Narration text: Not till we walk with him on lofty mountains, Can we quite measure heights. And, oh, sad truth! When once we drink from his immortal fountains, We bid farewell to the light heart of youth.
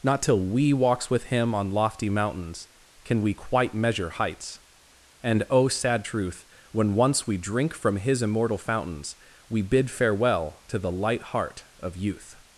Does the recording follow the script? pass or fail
fail